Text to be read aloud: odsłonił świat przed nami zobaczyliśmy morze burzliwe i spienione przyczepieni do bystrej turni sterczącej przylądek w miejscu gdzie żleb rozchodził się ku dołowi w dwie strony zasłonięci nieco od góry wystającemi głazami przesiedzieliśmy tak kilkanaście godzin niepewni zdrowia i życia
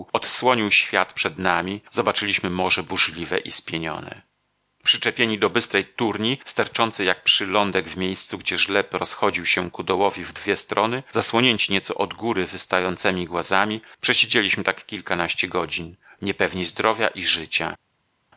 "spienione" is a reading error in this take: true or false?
false